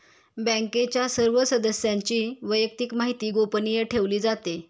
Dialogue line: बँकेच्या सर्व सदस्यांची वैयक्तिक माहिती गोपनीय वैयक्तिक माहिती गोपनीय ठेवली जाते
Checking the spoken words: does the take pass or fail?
fail